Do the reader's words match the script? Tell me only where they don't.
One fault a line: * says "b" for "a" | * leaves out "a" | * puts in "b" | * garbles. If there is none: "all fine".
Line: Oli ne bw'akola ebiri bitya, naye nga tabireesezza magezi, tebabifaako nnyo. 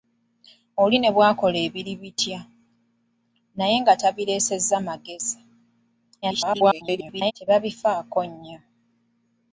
* garbles